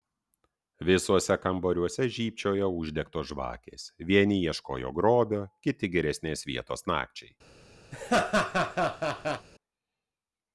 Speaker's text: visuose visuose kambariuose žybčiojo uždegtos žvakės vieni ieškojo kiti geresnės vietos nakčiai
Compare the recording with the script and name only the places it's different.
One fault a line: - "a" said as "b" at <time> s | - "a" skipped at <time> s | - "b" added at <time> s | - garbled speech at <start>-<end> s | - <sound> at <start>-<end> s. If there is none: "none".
- "visuose" skipped at 1.4 s
- "grobio" added at 5.0 s
- laugh at 7.9-9.5 s